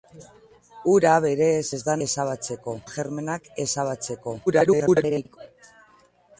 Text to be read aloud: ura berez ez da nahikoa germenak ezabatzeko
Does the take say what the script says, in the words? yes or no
no